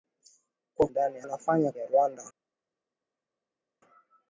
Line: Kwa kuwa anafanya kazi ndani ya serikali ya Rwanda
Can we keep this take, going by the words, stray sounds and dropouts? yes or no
no